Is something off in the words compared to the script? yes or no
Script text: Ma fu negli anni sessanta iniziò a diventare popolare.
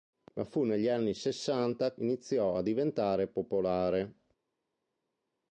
no